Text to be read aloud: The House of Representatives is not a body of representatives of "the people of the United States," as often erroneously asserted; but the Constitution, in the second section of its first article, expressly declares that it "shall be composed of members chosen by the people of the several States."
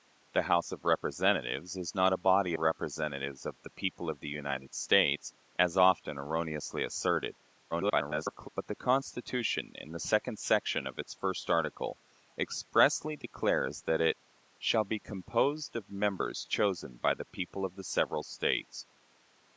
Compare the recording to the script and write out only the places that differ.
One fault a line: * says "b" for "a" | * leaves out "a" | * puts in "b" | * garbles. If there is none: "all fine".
* leaves out "of"
* garbles